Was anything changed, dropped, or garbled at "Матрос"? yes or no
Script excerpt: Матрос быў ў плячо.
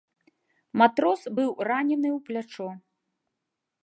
no